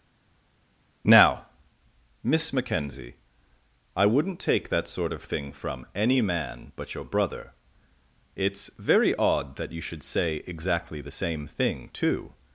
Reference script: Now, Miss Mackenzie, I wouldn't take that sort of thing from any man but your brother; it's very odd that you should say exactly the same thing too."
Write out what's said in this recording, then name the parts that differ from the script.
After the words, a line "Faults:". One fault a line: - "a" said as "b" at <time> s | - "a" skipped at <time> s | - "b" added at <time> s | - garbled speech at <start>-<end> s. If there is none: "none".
Now, Miss Mackenzie, I wouldn't take that sort of thing from any man but your brother; it's very odd that you should say exactly the same thing too."
Faults:
none